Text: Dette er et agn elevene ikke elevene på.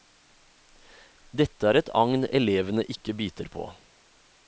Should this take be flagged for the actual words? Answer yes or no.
yes